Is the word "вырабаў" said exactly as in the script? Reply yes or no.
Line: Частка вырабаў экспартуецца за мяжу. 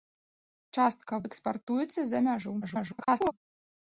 no